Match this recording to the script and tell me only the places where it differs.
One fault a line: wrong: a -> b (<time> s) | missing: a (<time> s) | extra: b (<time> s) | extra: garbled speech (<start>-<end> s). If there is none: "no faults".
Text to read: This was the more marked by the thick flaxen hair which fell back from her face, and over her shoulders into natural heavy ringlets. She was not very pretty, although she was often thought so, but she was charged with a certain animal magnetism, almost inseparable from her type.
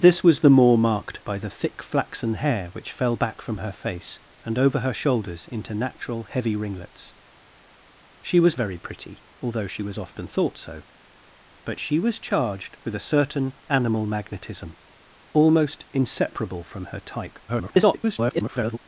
missing: not (8.6 s)
extra: garbled speech (17.5-18.8 s)